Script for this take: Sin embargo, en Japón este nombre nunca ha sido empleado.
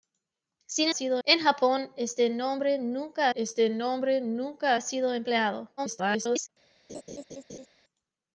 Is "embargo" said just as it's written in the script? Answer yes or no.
no